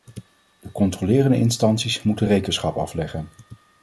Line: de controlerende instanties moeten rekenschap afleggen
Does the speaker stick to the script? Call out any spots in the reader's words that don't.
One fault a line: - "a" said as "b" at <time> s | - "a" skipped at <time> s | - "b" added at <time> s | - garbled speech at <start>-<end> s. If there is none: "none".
none